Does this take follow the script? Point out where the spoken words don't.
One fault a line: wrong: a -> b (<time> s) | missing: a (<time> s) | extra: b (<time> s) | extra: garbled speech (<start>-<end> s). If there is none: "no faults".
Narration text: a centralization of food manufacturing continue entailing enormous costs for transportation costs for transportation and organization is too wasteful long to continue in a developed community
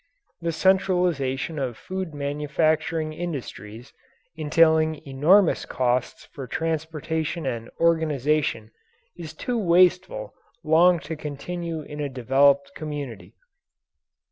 wrong: a -> the (0.4 s)
wrong: continue -> industries (3.1 s)
missing: costs for transportation (7.5 s)